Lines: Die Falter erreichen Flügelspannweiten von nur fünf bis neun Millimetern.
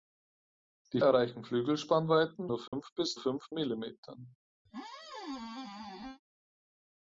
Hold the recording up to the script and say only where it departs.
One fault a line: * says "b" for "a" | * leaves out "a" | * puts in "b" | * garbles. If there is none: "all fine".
* leaves out "Falter"
* leaves out "von"
* says "fünf" for "neun"